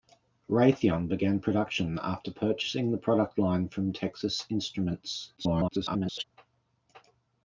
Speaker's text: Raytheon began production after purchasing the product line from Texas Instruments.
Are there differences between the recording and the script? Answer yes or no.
yes